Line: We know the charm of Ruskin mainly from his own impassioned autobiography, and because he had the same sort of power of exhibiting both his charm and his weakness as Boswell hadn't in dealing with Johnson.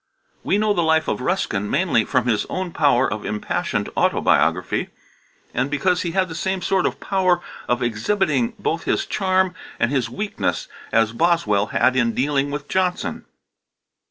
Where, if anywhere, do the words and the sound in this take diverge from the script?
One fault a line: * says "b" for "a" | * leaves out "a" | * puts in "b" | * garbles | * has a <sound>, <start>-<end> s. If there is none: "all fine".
* says "life" for "charm"
* puts in "power of"
* says "had" for "hadn't"